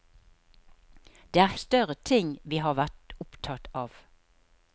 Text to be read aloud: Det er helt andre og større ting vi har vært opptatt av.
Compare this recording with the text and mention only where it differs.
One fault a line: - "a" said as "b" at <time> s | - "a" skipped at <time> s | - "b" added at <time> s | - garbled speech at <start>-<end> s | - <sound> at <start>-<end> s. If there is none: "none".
- "helt andre og" skipped at 1.5 s